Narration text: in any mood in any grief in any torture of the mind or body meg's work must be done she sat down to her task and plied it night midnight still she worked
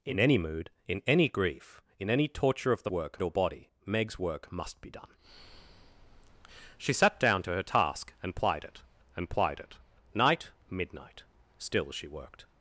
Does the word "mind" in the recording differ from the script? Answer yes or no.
yes